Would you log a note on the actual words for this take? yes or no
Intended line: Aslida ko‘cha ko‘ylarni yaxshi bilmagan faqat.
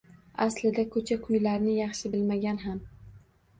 yes